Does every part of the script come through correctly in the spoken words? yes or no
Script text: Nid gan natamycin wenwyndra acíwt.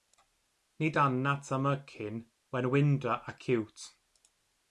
yes